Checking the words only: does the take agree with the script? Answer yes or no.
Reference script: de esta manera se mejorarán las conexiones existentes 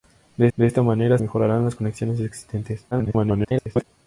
no